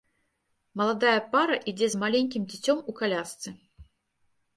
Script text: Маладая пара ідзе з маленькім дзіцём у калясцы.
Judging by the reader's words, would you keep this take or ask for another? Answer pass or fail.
pass